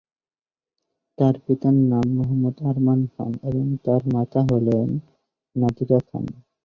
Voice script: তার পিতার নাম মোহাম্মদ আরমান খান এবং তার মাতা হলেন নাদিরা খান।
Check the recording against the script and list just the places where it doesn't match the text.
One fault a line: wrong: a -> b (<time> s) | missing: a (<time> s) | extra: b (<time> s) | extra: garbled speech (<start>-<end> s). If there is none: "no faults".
no faults